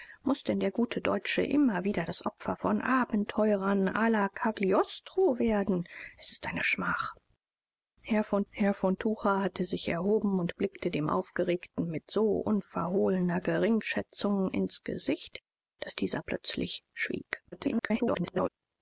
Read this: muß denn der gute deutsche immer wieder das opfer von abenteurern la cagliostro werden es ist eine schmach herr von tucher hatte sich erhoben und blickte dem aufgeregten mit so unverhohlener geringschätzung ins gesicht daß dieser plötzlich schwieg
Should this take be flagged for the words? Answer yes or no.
yes